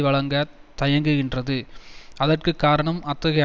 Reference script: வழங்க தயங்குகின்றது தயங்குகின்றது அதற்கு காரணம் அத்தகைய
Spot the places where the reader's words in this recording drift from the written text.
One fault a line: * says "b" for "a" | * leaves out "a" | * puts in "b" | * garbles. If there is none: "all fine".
* leaves out "தயங்குகின்றது"